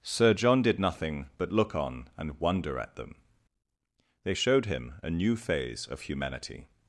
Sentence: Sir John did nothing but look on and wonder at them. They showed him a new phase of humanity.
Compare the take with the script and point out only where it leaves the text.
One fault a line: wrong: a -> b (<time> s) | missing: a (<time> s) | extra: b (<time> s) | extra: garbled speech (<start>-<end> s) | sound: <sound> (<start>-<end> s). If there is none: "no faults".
no faults